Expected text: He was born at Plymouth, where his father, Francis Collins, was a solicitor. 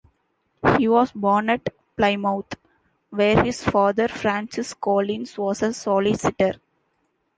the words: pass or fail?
pass